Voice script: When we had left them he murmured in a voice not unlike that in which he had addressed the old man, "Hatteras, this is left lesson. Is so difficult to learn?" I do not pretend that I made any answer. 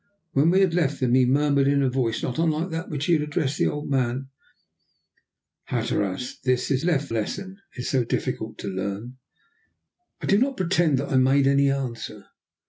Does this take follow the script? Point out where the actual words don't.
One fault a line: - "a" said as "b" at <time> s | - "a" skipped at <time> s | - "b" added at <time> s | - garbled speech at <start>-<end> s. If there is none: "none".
none